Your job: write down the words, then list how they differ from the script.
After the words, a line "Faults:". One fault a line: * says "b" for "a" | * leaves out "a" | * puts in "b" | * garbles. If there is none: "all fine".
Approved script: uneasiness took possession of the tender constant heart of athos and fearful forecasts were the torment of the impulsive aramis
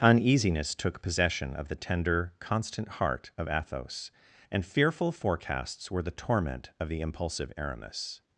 uneasiness took possession of the tender constant heart of athos and fearful forecasts were the torment of the impulsive aramis
Faults:
all fine